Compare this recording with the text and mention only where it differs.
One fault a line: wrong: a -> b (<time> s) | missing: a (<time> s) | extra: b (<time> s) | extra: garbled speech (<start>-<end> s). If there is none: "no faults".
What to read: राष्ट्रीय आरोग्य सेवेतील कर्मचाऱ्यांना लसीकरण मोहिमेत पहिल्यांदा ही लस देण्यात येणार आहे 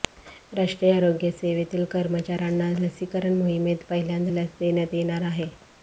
missing: ही (4.3 s)